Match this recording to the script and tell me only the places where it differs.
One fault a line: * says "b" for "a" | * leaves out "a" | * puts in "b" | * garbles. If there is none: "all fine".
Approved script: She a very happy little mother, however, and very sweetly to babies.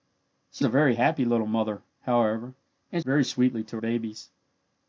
all fine